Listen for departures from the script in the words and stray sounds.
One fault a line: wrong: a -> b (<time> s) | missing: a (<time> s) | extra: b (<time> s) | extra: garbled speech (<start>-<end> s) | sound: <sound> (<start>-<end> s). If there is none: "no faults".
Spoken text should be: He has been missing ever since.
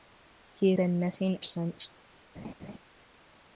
missing: has (0.7 s)
missing: ever (1.4 s)
sound: laugh (2.3-2.8 s)